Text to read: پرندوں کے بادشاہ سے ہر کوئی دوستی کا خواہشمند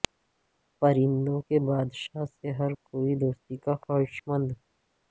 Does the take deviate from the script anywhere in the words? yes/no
no